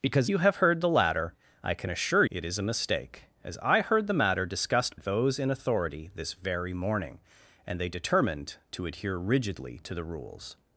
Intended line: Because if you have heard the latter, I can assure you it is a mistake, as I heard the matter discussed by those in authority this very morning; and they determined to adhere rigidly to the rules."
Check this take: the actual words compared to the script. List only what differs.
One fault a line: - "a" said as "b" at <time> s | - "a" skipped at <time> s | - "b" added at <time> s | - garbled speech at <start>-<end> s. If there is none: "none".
- "if" skipped at 0.3 s
- "you" skipped at 2.2 s
- "by" skipped at 5.0 s